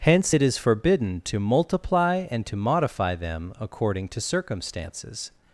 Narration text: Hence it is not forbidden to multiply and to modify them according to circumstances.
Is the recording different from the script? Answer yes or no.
yes